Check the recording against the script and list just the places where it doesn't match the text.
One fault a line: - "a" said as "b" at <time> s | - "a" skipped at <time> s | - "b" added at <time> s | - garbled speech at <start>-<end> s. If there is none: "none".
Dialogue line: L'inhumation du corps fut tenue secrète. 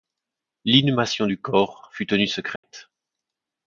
none